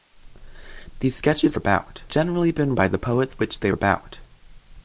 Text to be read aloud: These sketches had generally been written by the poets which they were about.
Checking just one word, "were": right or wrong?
wrong